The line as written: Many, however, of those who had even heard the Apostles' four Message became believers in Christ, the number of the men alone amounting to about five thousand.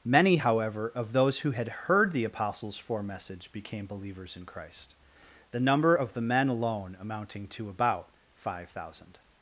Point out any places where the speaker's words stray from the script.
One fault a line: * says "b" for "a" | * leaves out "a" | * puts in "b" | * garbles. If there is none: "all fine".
* leaves out "even"